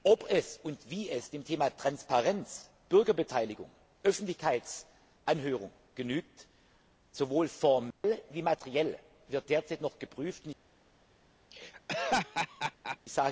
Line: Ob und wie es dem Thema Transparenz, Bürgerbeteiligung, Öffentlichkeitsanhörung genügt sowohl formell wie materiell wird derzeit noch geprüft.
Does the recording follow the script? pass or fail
pass